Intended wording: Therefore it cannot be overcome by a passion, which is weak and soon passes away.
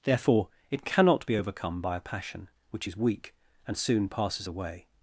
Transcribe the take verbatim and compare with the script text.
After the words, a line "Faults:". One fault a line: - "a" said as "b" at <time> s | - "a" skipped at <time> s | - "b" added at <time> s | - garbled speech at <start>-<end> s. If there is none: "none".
Therefore it cannot be overcome by a passion, which is weak and soon passes away.
Faults:
none